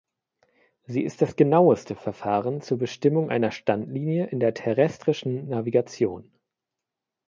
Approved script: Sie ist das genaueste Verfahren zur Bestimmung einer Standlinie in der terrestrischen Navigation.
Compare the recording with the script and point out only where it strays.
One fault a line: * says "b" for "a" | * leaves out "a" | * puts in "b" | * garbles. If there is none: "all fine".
all fine